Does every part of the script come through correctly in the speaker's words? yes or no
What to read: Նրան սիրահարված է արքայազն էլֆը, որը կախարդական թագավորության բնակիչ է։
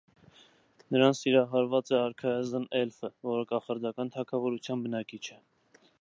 yes